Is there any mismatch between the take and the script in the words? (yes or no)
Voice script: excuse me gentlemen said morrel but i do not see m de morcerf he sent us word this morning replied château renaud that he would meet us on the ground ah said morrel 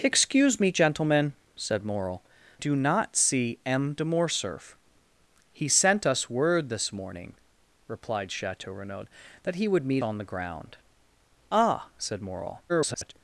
yes